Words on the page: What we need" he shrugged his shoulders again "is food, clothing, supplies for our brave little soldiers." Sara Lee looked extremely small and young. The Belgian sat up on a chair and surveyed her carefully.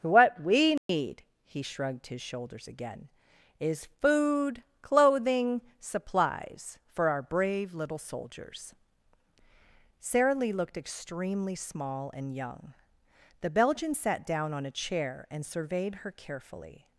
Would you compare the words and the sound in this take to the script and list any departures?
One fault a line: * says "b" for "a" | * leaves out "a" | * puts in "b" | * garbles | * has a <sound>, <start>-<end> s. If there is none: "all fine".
* has a dropout, 0.8-0.9 s
* says "down" for "up"